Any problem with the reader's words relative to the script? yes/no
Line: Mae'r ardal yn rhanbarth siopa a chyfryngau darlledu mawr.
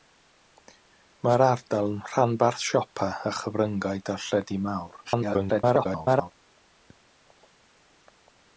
yes